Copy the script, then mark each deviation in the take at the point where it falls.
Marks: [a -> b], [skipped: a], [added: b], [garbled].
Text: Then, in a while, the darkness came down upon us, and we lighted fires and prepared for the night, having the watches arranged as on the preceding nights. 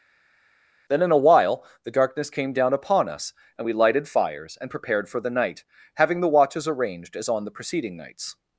Then, in a while, the darkness came down upon us, and we lighted fires and prepared for the night, having the watches arranged as on the preceding nights.